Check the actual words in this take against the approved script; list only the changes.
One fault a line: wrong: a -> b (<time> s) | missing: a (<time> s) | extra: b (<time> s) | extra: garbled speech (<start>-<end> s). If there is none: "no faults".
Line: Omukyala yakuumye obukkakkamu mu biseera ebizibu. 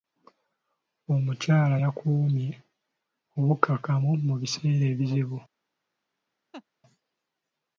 no faults